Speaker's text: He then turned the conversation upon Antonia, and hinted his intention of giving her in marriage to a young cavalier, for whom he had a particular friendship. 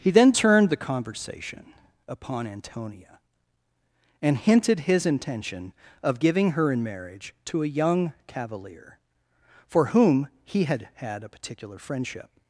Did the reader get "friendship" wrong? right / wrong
right